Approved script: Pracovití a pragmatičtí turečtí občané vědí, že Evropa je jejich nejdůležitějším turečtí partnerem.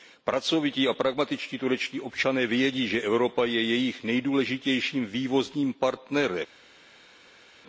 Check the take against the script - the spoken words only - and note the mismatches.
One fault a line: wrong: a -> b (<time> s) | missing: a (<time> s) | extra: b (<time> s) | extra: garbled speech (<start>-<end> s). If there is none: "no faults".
wrong: turečtí -> vývozním (5.0 s)